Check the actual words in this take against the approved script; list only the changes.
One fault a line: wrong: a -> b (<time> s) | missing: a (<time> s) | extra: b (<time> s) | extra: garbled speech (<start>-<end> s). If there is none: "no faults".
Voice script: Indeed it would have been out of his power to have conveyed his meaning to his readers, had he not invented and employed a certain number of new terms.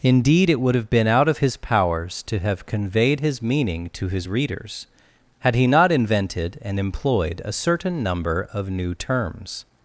wrong: power -> powers (1.6 s)